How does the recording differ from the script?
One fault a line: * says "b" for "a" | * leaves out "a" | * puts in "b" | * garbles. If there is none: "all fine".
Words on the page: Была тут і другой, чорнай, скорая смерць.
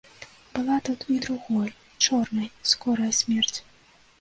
all fine